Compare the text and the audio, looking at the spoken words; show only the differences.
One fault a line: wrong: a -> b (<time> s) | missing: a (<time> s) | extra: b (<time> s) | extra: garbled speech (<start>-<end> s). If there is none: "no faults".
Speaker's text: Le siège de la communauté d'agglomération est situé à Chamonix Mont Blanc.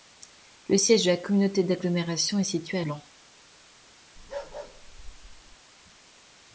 missing: Chamonix Mont (2.8 s)